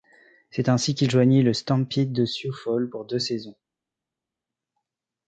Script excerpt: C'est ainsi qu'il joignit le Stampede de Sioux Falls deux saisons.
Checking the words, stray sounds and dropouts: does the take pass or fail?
fail